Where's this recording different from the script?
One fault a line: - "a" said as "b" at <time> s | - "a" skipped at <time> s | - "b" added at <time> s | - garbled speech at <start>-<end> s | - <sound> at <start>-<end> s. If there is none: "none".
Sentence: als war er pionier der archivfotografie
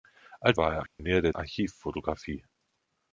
- dropout at 0.9-1.0 s